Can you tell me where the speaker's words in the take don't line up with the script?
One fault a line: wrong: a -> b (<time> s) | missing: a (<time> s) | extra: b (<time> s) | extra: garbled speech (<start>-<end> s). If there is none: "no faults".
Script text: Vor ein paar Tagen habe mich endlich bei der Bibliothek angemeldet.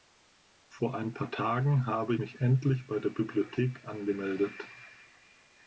no faults